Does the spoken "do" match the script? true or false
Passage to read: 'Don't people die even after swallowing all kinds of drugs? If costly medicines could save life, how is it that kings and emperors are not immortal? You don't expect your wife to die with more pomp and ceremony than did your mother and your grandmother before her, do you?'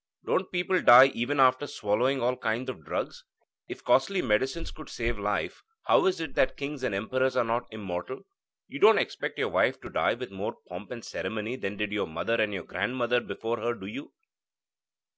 true